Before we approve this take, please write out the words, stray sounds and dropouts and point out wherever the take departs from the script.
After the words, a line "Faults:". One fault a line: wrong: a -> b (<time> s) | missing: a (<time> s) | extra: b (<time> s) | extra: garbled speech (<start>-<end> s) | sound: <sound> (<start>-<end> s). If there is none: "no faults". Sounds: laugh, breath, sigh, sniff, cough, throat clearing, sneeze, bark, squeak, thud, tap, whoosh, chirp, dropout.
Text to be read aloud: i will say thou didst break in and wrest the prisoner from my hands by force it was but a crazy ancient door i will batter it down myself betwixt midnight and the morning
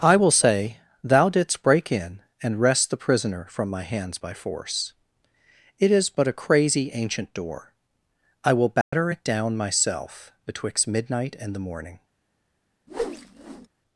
i will say thou didst break in and wrest the prisoner from my hands by force it is but a crazy ancient door i will batter it down myself betwixt midnight and the morning
Faults:
wrong: was -> is (5.9 s)
sound: dropout (8.8-8.9 s)
sound: whoosh (12.9-13.7 s)